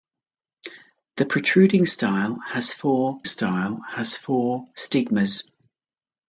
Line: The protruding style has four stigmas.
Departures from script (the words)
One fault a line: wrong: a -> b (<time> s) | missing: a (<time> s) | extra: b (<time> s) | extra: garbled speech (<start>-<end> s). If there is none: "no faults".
extra: style has four (3.2 s)